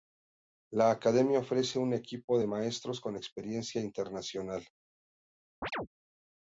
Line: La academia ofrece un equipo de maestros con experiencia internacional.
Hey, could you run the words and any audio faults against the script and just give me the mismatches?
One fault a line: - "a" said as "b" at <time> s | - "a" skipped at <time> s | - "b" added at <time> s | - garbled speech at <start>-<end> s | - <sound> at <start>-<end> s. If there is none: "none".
- chirp at 5.6-5.9 s